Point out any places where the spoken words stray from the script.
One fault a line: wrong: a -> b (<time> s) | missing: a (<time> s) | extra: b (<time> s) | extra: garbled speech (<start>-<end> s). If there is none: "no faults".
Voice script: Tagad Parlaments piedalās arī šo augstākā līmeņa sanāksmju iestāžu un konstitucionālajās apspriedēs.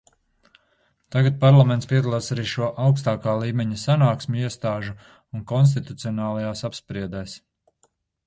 no faults